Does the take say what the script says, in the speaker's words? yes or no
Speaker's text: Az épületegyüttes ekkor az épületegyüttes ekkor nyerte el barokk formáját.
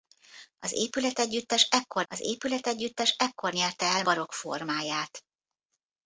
yes